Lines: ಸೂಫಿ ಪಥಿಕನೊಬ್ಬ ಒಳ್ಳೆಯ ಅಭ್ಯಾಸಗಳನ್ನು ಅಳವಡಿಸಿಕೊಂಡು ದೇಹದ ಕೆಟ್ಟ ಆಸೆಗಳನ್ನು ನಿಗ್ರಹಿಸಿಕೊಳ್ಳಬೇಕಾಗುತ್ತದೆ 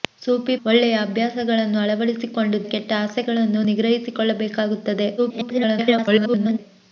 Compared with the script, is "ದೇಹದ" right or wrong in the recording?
wrong